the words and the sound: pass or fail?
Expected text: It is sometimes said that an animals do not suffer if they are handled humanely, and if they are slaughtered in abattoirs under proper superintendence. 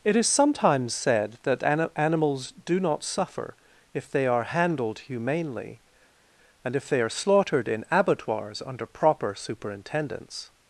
pass